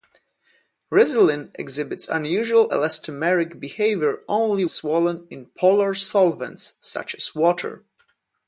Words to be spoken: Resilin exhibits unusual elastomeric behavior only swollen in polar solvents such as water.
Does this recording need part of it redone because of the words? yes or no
no